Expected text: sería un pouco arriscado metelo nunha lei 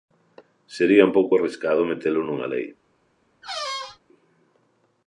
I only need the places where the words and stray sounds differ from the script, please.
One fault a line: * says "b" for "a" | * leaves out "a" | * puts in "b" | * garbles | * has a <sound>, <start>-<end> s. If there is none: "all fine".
* has a squeak, 3.4-4.0 s